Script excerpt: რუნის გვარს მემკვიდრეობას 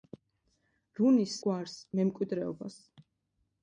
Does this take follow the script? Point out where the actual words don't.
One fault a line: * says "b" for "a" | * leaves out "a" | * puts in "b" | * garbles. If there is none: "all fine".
all fine